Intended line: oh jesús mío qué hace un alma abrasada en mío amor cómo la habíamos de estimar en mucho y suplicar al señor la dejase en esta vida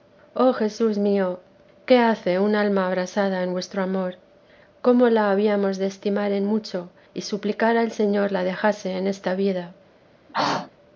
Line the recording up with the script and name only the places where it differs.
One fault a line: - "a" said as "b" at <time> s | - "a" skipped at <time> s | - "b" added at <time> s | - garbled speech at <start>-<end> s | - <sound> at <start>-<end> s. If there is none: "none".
- "mío" said as "vuestro" at 3.5 s
- throat clearing at 10.3-10.7 s